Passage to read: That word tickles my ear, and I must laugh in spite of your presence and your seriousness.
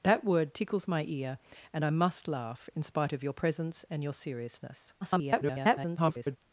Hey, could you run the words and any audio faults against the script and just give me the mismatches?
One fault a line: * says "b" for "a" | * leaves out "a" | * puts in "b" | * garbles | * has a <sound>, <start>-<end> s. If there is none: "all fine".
* garbles